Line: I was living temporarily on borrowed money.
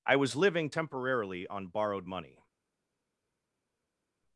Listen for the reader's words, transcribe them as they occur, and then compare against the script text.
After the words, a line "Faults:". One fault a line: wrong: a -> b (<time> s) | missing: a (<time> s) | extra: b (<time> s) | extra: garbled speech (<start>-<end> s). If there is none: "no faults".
I was living temporarily on borrowed money.
Faults:
no faults